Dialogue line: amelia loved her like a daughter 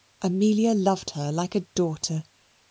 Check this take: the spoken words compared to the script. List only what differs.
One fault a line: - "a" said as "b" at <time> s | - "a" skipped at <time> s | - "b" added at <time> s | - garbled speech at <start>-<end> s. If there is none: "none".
none